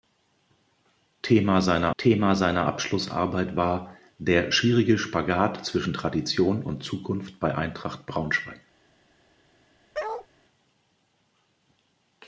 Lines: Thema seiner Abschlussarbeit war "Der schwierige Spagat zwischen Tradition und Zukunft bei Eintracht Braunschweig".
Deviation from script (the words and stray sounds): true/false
true